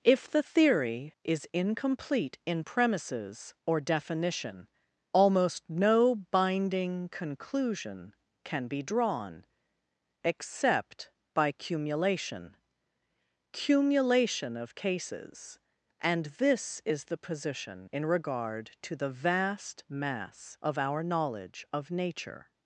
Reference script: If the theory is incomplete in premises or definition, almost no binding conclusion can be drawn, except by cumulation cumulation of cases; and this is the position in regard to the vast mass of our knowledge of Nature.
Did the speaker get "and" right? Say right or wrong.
right